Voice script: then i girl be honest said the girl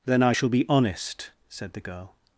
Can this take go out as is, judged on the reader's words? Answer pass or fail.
fail